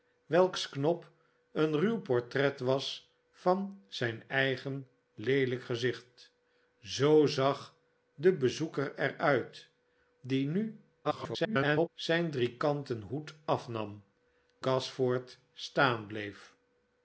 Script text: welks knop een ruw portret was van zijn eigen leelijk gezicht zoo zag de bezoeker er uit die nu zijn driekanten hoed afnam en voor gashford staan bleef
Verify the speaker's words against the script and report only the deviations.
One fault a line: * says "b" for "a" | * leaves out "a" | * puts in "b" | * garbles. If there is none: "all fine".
* garbles
* leaves out "en voor"